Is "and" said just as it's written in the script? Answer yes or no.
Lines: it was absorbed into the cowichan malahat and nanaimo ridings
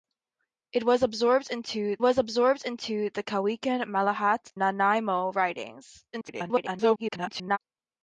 no